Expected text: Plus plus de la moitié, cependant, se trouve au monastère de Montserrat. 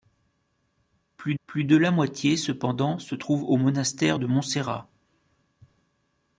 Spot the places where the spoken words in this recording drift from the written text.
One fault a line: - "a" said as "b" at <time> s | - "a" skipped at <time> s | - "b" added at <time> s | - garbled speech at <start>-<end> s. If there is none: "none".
none